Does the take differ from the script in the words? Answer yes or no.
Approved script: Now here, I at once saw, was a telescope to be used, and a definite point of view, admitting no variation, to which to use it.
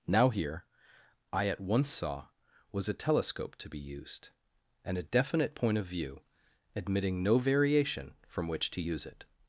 yes